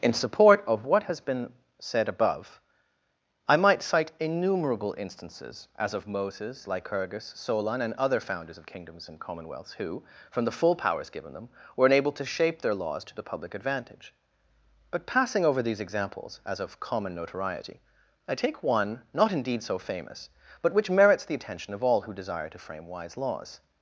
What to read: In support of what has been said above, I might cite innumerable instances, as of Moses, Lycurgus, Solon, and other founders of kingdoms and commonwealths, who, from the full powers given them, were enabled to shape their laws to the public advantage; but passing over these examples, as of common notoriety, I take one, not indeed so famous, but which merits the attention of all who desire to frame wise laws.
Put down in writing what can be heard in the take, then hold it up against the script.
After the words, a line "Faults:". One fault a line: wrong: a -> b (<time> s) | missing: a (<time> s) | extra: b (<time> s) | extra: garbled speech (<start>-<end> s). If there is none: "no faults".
In support of what has been said above, I might cite innumerable instances, as of Moses, Lycurgus, Solon, and other founders of kingdoms and commonwealths, who, from the full powers given them, were enabled to shape their laws to the public advantage; but passing over these examples, as of common notoriety, I take one, not indeed so famous, but which merits the attention of all who desire to frame wise laws.
Faults:
no faults